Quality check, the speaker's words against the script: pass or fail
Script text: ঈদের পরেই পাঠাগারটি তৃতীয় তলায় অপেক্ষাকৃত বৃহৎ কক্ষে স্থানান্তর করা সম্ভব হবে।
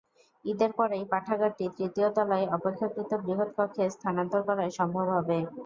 pass